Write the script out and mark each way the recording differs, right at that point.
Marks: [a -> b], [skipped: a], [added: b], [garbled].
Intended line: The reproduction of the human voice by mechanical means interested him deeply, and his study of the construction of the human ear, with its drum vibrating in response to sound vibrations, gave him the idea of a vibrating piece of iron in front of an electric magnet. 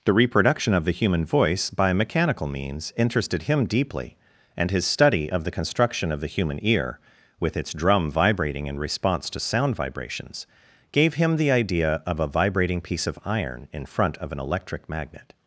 The reproduction of the human voice by mechanical means interested him deeply, and his study of the construction of the human ear, with its drum vibrating in response to sound vibrations, gave him the idea of a vibrating piece of iron in front of an electric magnet.